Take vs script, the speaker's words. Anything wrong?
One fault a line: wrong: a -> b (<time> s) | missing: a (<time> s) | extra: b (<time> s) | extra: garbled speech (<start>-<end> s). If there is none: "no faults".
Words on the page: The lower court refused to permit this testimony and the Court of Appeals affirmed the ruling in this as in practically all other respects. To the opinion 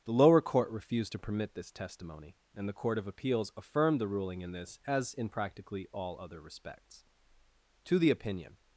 no faults